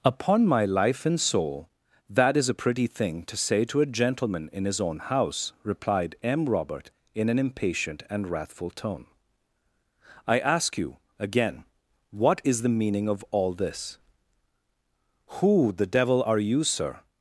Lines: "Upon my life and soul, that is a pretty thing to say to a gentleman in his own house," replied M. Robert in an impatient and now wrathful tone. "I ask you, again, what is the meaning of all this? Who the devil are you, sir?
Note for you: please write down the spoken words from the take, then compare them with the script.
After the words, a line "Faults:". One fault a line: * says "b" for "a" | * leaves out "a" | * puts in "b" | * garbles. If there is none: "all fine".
"Upon my life and soul, that is a pretty thing to say to a gentleman in his own house," replied M. Robert in an impatient and wrathful tone. "I ask you, again, what is the meaning of all this? Who the devil are you, sir?
Faults:
* leaves out "now"